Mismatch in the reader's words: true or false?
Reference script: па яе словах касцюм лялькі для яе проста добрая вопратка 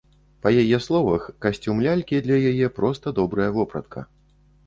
false